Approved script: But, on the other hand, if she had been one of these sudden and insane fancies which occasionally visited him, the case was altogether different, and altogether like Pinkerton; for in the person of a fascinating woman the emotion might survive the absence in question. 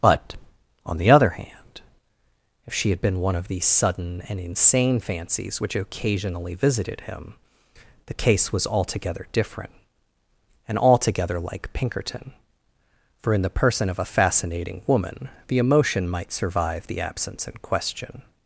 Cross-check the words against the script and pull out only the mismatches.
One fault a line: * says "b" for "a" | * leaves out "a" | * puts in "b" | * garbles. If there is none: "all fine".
all fine